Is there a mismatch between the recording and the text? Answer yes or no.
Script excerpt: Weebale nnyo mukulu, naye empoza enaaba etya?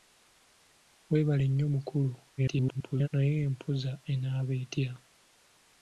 yes